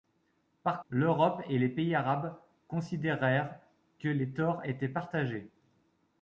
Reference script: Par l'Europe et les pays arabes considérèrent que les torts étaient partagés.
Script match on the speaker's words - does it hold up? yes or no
yes